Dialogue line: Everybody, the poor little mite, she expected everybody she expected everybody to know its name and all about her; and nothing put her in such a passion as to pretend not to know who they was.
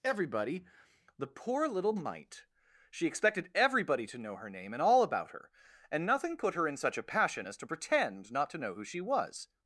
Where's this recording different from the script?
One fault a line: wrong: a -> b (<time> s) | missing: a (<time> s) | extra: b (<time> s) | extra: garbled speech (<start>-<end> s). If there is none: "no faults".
missing: she expected everybody (4.1 s)
wrong: its -> her (4.3 s)
wrong: they -> she (8.8 s)